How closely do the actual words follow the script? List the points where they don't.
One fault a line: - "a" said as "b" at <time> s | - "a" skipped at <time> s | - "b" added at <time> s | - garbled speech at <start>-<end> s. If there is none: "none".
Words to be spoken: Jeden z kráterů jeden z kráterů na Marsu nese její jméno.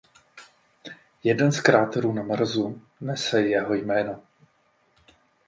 - "jeden z kráterů" skipped at 2.1 s
- "její" said as "jeho" at 3.4 s